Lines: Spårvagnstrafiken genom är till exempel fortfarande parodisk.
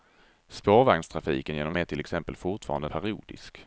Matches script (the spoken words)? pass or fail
pass